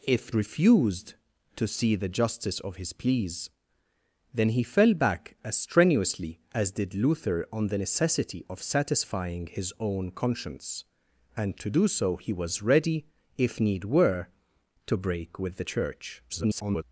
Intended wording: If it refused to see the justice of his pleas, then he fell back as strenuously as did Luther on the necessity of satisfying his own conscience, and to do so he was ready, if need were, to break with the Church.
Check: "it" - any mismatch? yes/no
yes